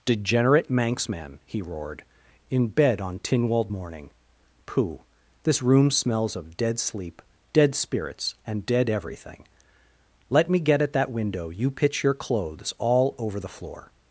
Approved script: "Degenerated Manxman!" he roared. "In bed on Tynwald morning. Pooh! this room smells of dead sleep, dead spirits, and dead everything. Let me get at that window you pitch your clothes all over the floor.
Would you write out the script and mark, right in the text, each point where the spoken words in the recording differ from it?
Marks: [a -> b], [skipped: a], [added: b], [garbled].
["Degenerated -> Degenerate] Manxman!" he roared. "In bed on Tynwald morning. Pooh! this room smells of dead sleep, dead spirits, and dead everything. Let me get at that window you pitch your clothes all over the floor.